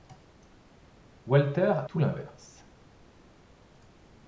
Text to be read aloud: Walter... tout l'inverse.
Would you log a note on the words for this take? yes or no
no